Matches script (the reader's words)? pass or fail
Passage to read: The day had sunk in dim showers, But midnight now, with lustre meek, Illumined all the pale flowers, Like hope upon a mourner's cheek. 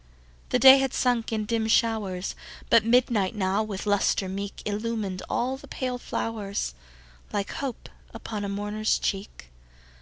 pass